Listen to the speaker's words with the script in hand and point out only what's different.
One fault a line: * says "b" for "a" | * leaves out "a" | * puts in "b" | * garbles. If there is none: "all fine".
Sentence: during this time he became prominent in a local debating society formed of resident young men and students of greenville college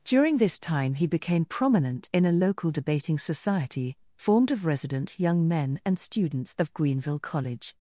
all fine